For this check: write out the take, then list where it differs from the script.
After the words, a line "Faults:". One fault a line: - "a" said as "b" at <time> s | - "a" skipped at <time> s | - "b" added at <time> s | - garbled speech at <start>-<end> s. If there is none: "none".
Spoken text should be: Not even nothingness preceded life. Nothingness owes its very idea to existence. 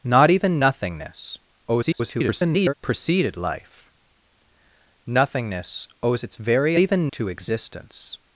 Not even nothingness [garbled] preceded life. Nothingness owes its very even to existence.
Faults:
- garbled speech at 1.7-2.7 s
- "idea" said as "even" at 6.8 s